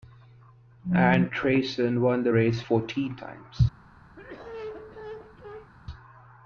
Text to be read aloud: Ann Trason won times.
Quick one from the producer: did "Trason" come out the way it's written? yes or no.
yes